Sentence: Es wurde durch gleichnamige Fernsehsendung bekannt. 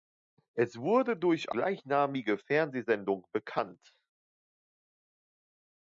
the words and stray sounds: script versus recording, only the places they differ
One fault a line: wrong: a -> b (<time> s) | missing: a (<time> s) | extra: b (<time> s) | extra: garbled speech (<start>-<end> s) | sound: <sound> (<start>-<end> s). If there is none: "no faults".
no faults